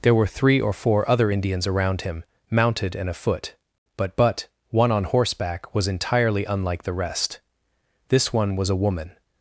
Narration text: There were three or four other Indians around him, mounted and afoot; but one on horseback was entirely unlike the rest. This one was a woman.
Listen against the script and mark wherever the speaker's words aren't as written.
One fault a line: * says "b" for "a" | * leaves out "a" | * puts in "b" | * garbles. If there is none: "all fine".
* puts in "but"